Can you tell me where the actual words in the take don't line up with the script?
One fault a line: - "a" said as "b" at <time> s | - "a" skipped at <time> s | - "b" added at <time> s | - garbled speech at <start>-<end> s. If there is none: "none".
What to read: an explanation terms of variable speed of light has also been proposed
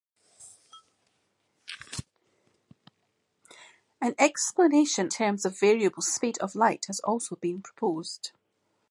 none